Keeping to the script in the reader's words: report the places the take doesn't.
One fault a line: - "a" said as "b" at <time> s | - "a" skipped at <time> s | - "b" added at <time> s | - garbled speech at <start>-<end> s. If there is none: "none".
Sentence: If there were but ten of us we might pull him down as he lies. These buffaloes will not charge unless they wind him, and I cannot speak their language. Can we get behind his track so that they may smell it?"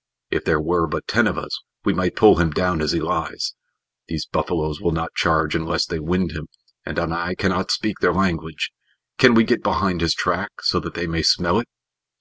none